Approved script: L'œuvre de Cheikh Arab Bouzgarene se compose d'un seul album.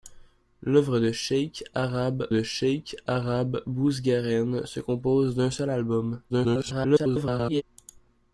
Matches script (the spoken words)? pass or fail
fail